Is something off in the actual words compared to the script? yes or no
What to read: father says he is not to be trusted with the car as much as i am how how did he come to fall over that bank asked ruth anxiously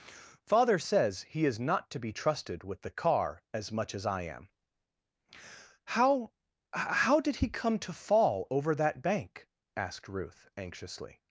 no